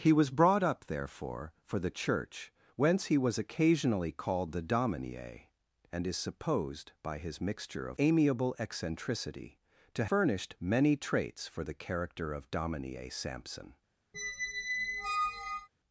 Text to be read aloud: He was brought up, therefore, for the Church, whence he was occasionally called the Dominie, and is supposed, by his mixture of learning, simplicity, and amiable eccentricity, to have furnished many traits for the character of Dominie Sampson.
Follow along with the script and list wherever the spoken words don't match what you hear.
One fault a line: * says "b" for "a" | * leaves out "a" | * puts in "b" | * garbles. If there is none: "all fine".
* leaves out "learning simplicity and"
* leaves out "have"